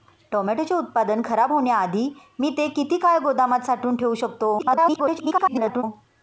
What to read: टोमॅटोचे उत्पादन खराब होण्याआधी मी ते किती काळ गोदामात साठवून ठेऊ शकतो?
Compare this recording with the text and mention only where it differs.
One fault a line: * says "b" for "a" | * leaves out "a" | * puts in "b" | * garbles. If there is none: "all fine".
* garbles